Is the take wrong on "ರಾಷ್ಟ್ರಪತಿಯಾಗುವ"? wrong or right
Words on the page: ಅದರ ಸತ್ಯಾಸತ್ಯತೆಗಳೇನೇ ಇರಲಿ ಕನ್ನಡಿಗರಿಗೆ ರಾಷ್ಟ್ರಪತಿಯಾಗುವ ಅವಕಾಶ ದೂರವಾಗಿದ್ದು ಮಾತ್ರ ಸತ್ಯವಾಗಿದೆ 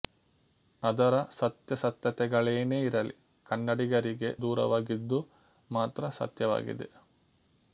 wrong